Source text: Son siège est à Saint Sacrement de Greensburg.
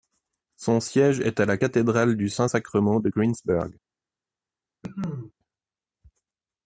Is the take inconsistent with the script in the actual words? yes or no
yes